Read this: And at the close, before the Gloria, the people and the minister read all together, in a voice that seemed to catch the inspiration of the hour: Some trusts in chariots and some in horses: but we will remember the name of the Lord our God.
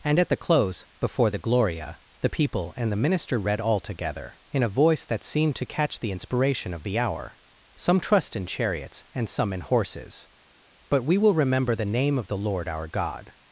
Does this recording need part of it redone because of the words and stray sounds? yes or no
yes